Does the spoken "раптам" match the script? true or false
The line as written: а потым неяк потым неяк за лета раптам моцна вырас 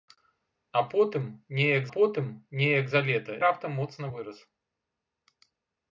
true